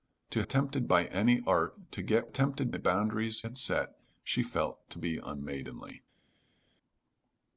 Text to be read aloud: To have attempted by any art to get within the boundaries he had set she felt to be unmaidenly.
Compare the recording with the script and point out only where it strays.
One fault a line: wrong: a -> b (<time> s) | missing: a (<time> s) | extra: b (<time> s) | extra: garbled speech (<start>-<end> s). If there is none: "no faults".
missing: have (0.4 s)
wrong: within -> attempted (2.3 s)
missing: he (3.4 s)